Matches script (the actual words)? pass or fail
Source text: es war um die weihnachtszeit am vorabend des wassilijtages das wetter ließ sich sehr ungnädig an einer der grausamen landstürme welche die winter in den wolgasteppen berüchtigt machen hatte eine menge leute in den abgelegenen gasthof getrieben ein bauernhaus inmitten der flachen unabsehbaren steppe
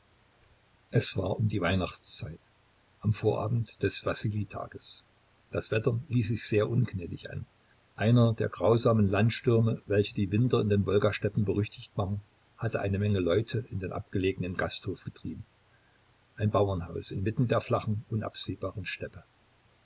pass